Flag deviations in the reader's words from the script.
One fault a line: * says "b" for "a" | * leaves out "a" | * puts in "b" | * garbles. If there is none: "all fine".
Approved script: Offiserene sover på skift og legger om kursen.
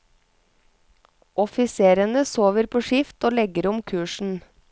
all fine